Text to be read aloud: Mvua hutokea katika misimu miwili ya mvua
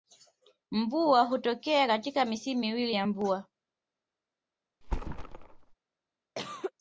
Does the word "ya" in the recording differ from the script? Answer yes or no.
no